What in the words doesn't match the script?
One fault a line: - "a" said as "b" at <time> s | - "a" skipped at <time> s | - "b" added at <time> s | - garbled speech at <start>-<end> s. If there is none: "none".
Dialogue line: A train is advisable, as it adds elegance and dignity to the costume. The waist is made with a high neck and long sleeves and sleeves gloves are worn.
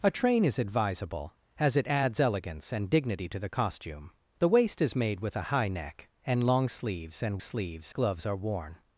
none